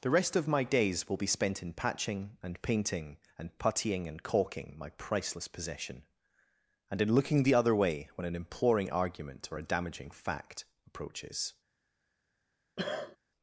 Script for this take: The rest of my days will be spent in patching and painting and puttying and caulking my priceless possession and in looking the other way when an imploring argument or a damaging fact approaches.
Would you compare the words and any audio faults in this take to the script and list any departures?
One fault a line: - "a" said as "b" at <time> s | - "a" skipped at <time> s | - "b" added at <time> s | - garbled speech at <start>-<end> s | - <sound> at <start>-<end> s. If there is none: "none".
- cough at 12.8-13.2 s